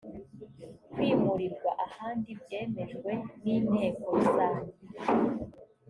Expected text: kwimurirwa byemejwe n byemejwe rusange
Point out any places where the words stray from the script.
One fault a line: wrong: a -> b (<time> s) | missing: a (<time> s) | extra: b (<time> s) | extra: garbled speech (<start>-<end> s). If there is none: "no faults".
extra: ahandi (1.9 s)
wrong: byemejwe -> inteko (3.5 s)